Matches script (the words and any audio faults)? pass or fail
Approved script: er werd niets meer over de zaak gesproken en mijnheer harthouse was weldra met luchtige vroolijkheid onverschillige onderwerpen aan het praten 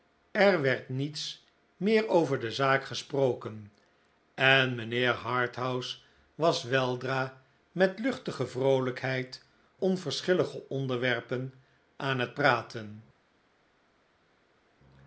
pass